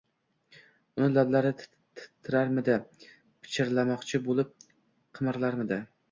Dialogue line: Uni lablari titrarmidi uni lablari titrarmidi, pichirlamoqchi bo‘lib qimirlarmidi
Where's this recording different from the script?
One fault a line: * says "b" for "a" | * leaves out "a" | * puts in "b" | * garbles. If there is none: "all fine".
* leaves out "uni lablari titrarmidi"